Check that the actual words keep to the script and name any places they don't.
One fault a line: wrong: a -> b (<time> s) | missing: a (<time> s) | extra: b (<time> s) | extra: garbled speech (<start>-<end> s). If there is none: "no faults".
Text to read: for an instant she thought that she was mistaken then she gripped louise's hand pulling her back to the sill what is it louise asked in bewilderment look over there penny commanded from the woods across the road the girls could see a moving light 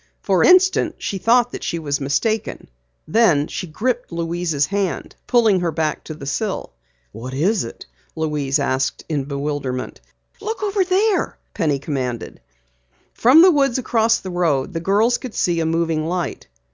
missing: an (0.4 s)